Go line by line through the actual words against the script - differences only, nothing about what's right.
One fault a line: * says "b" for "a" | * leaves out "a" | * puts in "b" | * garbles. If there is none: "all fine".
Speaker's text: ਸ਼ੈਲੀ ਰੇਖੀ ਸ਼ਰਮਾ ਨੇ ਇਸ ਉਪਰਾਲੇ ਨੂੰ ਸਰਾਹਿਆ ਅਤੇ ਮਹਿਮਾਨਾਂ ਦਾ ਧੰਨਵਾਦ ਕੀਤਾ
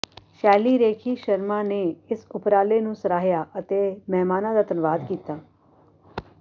all fine